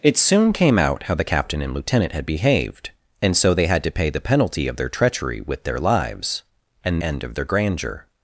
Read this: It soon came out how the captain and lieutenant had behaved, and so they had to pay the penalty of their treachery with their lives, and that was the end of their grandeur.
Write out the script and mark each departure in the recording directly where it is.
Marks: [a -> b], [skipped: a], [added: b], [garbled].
It soon came out how the captain and lieutenant had behaved, and so they had to pay the penalty of their treachery with their lives, and [skipped: that was the] end of their grandeur.